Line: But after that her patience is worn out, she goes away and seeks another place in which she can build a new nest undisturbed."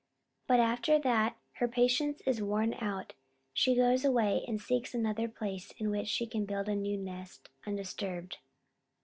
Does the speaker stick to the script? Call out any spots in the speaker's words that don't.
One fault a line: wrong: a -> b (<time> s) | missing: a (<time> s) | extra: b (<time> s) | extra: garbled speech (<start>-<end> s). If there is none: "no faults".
no faults